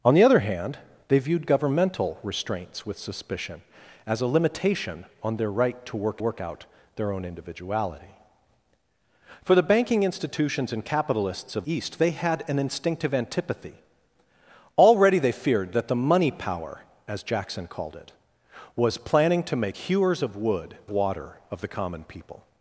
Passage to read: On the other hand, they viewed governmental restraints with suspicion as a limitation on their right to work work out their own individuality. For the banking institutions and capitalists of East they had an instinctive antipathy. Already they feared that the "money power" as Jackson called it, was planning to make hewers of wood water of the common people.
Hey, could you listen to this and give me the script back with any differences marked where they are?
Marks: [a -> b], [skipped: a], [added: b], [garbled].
On the other hand, they viewed governmental restraints with suspicion as a limitation on their right to work work out their own individuality. For the banking institutions and capitalists of East they had an instinctive antipathy. Already they feared that the "money power" as Jackson called it, was planning to make hewers of wood water of the common people.